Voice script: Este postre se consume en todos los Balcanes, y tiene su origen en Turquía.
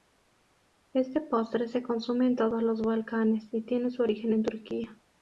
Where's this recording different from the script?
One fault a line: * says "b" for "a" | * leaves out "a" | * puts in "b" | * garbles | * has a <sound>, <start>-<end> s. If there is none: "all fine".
all fine